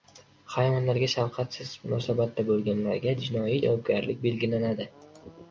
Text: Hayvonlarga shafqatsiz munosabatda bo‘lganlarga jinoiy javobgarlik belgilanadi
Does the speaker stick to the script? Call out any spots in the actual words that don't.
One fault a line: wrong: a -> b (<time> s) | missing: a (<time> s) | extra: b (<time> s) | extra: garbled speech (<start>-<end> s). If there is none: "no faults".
no faults